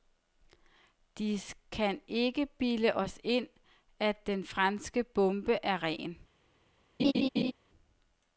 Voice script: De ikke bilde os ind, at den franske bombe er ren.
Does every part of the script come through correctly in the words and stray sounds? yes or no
no